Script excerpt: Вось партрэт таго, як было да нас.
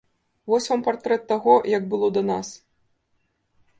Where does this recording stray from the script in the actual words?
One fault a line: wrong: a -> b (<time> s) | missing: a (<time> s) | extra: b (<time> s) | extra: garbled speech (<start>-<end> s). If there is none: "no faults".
extra: вам (0.7 s)